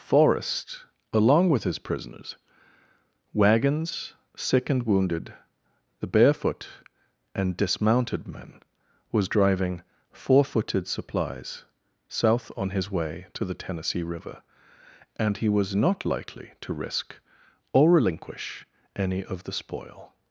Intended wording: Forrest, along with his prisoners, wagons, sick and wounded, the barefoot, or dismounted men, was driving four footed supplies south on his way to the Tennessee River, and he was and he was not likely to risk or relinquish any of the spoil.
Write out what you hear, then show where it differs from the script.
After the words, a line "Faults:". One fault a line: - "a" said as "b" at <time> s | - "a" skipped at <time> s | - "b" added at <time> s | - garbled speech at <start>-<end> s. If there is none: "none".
Forrest, along with his prisoners, wagons, sick and wounded, the barefoot, and dismounted men, was driving four footed supplies south on his way to the Tennessee River, and he was not likely to risk or relinquish any of the spoil.
Faults:
- "or" said as "and" at 7.3 s
- "and he was" skipped at 15.8 s